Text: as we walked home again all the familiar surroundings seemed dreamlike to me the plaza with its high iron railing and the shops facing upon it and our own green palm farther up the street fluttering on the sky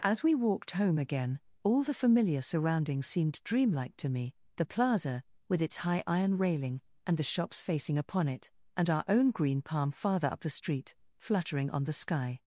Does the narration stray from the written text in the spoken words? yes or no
no